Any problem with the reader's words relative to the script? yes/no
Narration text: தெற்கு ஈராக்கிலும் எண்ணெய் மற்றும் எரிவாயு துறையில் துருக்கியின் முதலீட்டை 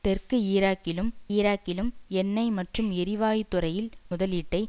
yes